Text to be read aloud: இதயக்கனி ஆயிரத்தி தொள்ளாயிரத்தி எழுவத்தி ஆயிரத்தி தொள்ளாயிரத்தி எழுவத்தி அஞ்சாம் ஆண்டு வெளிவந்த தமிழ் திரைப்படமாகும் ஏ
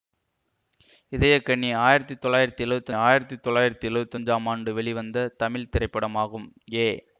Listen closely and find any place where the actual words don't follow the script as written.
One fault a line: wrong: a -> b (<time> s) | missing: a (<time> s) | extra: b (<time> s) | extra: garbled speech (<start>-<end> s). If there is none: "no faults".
no faults